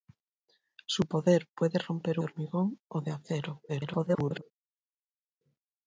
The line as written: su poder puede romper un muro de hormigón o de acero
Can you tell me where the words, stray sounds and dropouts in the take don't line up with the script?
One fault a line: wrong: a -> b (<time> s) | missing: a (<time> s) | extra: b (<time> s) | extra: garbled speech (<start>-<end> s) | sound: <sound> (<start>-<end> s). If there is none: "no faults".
missing: un muro de (2.2 s)
extra: garbled speech (3.7-4.4 s)